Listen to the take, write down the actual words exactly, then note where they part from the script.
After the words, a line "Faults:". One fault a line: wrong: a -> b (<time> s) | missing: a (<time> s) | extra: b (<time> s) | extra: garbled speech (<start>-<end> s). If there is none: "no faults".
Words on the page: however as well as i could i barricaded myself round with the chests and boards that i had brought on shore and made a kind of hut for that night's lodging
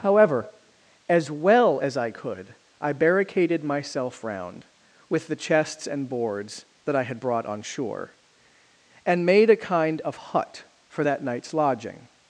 however as well as i could i barricaded myself round with the chests and boards that i had brought on shore and made a kind of hut for that night's lodging
Faults:
no faults